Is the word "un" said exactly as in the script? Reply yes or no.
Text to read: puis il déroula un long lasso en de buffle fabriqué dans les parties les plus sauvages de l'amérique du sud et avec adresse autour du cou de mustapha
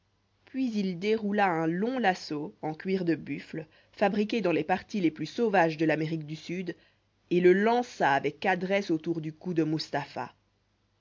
yes